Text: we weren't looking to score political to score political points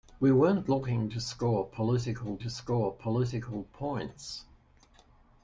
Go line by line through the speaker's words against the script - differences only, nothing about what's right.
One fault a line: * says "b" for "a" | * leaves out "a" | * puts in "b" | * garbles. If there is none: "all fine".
all fine